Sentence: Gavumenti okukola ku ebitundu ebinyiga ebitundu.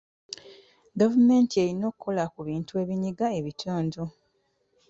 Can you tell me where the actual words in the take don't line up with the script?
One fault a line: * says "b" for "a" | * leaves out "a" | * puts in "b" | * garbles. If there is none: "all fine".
* puts in "erina"
* says "bintu" for "ebitundu"